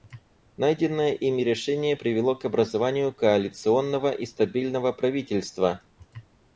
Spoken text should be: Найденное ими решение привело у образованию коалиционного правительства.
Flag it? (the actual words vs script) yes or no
yes